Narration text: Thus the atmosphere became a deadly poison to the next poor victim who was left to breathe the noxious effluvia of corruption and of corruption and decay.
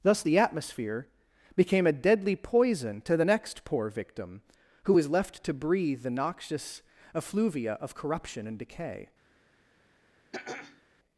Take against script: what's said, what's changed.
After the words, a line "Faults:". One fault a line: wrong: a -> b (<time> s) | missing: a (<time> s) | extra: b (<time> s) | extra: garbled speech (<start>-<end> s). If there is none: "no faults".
Thus the atmosphere became a deadly poison to the next poor victim who was left to breathe the noxious effluvia of corruption and decay.
Faults:
missing: of corruption and (8.6 s)